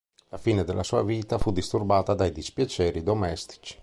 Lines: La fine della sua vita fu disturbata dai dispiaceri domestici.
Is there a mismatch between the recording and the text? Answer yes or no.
no